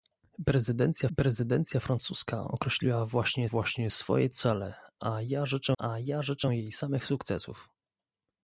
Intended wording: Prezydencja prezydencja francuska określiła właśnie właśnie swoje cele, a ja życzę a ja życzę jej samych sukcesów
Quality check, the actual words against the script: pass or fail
pass